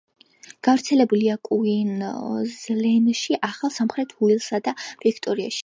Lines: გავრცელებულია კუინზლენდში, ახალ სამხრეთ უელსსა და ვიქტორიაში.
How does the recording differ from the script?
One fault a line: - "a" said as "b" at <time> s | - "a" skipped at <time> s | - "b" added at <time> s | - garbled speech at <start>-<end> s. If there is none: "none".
none